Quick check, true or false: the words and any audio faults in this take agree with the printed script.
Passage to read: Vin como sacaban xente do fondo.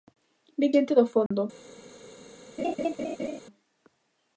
false